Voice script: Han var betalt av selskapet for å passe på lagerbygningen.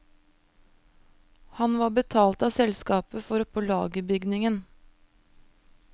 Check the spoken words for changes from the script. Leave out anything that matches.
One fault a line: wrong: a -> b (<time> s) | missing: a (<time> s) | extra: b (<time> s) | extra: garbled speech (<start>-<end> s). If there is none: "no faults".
missing: passe (3.5 s)